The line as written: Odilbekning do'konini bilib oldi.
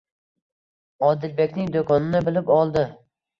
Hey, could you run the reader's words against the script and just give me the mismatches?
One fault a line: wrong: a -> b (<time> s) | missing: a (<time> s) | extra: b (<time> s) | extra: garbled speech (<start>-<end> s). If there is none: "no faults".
no faults